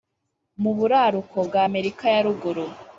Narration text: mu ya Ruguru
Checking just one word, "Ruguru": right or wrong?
right